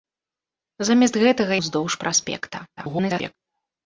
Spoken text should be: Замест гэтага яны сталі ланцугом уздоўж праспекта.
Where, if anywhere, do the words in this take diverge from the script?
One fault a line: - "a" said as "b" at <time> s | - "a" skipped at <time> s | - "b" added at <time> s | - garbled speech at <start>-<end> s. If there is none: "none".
- "яны сталі ланцугом" skipped at 1.5 s
- garbled speech at 2.8-3.4 s